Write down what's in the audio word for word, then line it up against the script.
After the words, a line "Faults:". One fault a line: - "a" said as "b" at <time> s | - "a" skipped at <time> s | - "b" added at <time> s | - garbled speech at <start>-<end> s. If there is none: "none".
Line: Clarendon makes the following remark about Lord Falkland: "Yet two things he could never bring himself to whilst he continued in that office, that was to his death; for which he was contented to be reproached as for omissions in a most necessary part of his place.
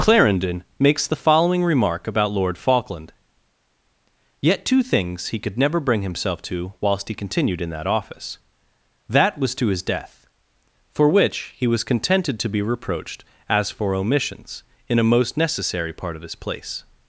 Clarendon makes the following remark about Lord Falkland: "Yet two things he could never bring himself to whilst he continued in that office, that was to his death; for which he was contented to be reproached as for omissions in a most necessary part of his place.
Faults:
none